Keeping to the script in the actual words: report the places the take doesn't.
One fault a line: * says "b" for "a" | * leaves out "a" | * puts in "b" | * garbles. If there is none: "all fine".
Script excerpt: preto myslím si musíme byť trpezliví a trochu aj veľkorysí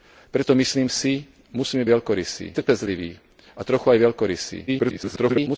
* says "veľkorysí" for "byť"
* garbles